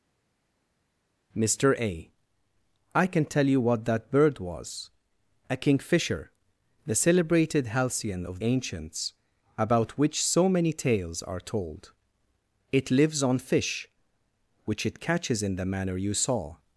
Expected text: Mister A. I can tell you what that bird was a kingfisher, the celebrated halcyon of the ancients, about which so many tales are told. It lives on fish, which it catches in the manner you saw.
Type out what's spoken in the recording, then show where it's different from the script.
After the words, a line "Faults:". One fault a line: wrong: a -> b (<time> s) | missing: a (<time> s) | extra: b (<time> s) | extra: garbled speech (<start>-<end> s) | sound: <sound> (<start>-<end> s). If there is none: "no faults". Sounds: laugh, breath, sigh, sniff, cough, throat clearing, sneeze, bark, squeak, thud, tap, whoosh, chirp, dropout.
Mister A. I can tell you what that bird was a kingfisher, the celebrated halcyon of ancients, about which so many tales are told. It lives on fish, which it catches in the manner you saw.
Faults:
missing: the (8.4 s)